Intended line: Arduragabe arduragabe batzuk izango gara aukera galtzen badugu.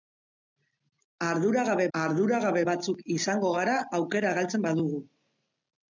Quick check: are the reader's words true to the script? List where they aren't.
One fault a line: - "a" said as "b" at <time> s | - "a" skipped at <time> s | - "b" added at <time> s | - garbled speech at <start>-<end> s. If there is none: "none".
none